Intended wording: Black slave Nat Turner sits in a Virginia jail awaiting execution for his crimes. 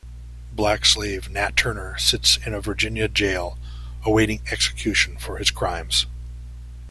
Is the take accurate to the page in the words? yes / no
yes